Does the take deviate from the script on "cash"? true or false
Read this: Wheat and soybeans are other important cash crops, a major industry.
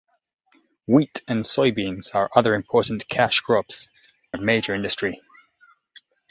false